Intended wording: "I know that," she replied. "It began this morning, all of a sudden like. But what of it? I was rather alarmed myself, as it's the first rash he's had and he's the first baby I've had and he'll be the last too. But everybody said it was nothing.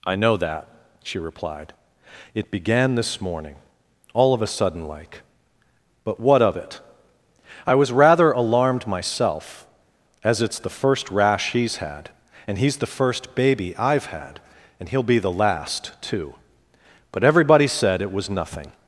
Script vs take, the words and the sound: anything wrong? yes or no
no